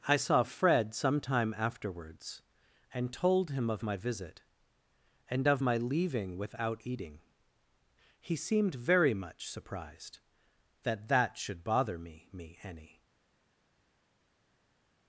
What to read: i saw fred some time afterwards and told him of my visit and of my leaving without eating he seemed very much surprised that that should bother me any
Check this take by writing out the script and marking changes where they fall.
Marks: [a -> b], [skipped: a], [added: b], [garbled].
i saw fred some time afterwards and told him of my visit and of my leaving without eating he seemed very much surprised that that should bother me [added: me] any